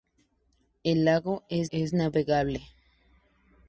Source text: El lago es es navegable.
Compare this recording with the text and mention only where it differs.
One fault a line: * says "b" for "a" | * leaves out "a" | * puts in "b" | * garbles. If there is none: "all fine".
all fine